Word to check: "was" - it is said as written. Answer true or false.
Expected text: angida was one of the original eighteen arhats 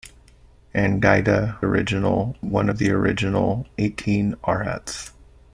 false